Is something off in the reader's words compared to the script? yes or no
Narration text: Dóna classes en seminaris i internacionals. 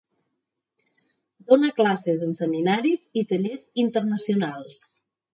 yes